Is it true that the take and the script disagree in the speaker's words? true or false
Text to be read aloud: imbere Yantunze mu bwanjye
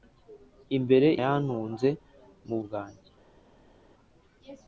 false